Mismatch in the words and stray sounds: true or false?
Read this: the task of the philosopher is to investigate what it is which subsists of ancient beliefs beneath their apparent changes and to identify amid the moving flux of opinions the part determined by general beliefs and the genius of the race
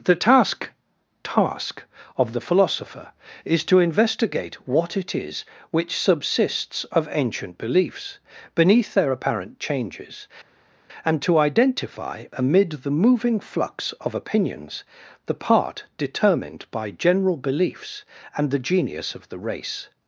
true